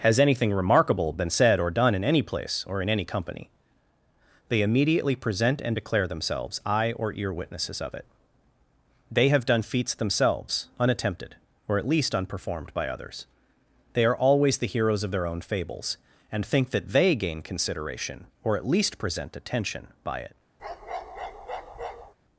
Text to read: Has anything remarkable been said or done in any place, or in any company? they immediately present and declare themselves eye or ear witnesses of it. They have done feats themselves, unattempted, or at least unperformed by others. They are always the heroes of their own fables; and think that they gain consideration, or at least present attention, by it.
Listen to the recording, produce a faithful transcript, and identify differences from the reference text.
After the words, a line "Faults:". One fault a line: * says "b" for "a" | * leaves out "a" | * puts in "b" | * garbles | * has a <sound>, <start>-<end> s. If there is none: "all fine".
Has anything remarkable been said or done in any place, or in any company? they immediately present and declare themselves eye or ear witnesses of it. They have done feats themselves, unattempted, or at least unperformed by others. They are always the heroes of their own fables; and think that they gain consideration, or at least present attention, by it.
Faults:
* has a bark, 20.6-22.1 s